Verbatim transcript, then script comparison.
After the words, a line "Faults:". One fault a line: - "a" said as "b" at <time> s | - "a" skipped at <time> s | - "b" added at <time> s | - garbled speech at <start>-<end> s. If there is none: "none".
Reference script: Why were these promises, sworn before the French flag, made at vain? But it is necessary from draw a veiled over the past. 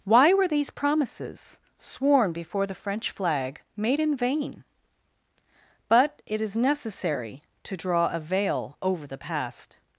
Why were these promises, sworn before the French flag, made in vain? But it is necessary to draw a veil over the past.
Faults:
- "at" said as "in" at 4.0 s
- "from" said as "to" at 7.6 s
- "veiled" said as "veil" at 8.2 s